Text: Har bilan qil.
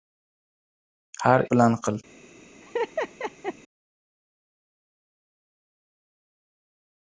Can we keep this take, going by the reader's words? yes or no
yes